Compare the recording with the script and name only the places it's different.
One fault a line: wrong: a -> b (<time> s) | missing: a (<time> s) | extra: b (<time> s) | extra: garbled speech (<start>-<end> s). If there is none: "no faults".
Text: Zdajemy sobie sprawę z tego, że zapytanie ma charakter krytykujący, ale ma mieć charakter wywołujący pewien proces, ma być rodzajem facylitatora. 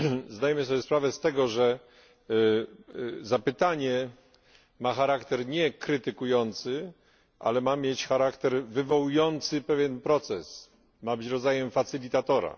extra: nie (5.5 s)